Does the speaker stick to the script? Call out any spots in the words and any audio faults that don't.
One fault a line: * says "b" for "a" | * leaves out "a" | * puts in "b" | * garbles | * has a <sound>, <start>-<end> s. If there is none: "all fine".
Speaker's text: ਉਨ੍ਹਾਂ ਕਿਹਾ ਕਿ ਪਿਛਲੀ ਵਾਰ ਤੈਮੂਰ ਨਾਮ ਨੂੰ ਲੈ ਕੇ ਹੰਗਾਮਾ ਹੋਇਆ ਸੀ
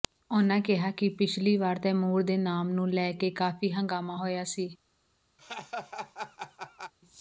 * puts in "ਦੇ"
* puts in "ਕਾਫੀ"
* has a laugh, 5.4-6.9 s